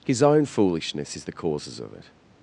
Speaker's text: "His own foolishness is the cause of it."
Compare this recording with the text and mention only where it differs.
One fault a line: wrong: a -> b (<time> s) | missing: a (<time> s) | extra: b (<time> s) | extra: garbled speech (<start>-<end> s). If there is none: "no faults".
wrong: cause -> causes (1.3 s)